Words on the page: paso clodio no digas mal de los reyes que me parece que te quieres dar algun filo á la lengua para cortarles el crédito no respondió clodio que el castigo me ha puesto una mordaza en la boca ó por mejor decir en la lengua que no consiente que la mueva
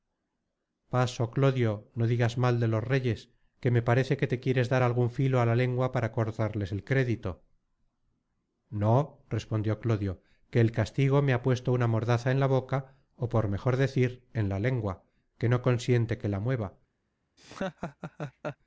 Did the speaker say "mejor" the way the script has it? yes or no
yes